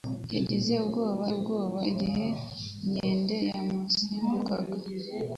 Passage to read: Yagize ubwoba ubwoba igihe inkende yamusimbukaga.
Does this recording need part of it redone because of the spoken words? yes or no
no